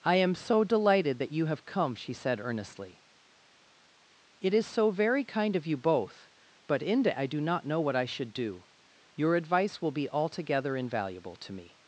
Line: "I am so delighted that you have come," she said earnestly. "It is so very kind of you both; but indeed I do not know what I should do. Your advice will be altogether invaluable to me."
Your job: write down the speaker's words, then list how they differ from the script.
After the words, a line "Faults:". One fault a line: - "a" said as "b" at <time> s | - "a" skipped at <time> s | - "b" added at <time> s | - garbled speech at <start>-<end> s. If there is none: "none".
"I am so delighted that you have come," she said earnestly. "It is so very kind of you both; but inde I do not know what I should do. Your advice will be altogether invaluable to me."
Faults:
- "indeed" said as "inde" at 6.8 s